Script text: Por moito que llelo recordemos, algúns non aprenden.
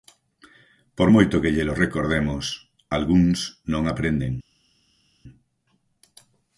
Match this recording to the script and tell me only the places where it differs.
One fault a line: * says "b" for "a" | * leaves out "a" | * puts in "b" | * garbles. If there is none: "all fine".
all fine